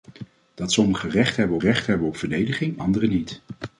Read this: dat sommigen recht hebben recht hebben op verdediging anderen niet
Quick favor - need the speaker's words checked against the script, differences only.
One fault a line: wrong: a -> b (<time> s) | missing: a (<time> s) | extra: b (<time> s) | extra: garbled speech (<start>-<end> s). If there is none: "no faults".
no faults